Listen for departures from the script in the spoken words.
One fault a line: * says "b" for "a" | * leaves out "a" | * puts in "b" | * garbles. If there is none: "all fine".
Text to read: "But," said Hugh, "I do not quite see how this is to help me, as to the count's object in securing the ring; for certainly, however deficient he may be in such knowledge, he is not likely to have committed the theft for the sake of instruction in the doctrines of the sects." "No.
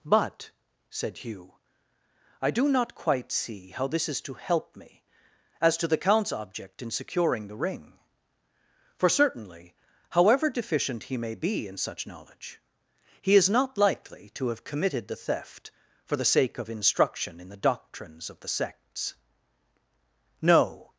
all fine